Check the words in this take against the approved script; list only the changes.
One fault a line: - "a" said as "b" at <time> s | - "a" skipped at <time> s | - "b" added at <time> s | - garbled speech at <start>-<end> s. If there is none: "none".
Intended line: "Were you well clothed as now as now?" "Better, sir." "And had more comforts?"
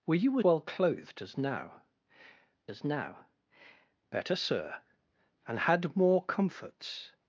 none